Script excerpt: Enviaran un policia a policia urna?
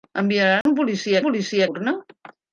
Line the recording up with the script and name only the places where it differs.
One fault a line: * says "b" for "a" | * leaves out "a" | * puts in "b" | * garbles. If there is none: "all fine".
all fine